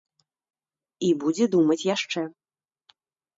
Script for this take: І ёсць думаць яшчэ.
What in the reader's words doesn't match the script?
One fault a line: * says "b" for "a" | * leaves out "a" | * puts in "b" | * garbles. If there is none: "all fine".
* says "будзе" for "ёсць"